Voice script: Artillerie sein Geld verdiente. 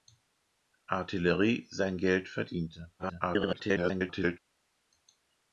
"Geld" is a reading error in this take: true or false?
false